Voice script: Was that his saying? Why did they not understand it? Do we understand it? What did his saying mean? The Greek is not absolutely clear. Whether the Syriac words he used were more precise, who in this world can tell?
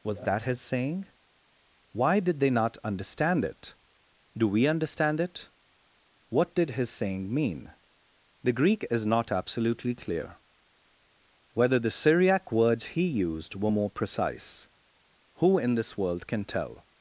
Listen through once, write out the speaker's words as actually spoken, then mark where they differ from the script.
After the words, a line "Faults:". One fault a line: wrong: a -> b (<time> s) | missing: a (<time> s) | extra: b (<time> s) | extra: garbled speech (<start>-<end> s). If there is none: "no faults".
Was that his saying? Why did they not understand it? Do we understand it? What did his saying mean? The Greek is not absolutely clear. Whether the Syriac words he used were more precise, who in this world can tell?
Faults:
no faults